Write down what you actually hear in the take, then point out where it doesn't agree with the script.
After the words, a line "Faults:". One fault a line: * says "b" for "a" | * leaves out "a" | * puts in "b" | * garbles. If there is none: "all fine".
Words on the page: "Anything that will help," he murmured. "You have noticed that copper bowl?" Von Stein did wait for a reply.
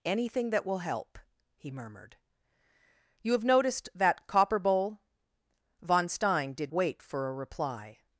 "Anything that will help," he murmured. "You have noticed that copper bowl?" Von Stein did wait for a reply.
Faults:
all fine